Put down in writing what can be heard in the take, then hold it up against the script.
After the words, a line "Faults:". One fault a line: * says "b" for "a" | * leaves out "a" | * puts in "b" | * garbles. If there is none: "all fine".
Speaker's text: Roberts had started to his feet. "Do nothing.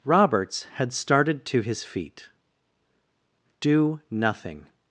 Roberts had started to his feet. "Do nothing.
Faults:
all fine